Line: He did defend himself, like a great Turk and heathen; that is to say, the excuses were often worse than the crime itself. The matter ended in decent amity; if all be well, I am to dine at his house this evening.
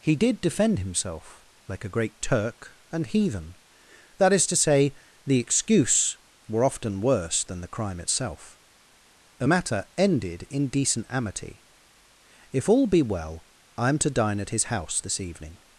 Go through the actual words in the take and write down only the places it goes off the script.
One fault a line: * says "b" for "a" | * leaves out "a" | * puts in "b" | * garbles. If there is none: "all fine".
* says "excuse" for "excuses"